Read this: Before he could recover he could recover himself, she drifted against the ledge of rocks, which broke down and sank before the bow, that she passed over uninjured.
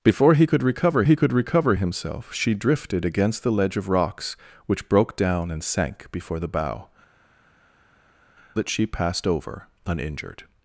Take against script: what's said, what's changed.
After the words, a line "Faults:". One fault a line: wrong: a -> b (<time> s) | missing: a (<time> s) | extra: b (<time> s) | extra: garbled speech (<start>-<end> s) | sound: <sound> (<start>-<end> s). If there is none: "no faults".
Before he could recover he could recover himself, she drifted against the ledge of rocks, which broke down and sank before the bow, that she passed over uninjured.
Faults:
no faults